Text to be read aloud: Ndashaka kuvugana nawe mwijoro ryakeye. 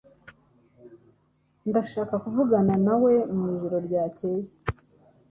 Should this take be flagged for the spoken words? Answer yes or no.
no